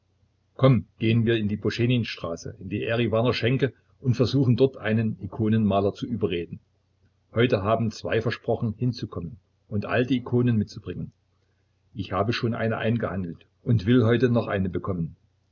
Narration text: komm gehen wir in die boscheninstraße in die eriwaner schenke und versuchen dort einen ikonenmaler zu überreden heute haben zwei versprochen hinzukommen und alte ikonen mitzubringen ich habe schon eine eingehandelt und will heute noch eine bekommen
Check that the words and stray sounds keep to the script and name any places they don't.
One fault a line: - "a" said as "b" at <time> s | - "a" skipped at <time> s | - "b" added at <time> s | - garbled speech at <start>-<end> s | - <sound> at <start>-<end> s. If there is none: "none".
none